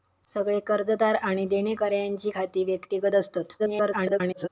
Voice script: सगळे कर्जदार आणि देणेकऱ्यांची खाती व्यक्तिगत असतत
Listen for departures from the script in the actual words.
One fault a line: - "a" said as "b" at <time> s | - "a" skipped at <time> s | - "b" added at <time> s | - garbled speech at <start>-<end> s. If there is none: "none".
- garbled speech at 3.6-4.5 s